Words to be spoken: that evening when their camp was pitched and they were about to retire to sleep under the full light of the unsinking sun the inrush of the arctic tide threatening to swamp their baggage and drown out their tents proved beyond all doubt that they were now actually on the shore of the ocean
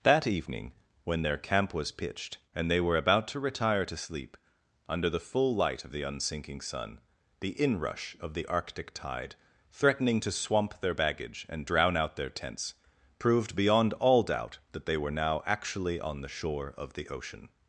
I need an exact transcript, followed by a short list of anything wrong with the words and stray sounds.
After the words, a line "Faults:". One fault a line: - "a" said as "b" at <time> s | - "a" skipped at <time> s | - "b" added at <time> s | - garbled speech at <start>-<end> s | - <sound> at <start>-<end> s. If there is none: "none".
that evening when their camp was pitched and they were about to retire to sleep under the full light of the unsinking sun the inrush of the arctic tide threatening to swamp their baggage and drown out their tents proved beyond all doubt that they were now actually on the shore of the ocean
Faults:
none